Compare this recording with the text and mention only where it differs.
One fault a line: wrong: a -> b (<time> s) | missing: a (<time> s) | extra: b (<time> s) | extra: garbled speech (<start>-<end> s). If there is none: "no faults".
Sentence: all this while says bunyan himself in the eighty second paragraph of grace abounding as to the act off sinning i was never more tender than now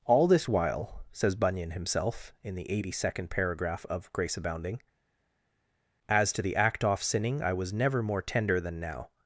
no faults